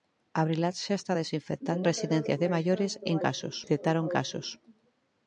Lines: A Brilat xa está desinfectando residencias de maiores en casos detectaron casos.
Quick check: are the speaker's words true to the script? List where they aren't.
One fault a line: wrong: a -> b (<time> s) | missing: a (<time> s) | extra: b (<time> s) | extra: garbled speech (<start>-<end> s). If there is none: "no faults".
no faults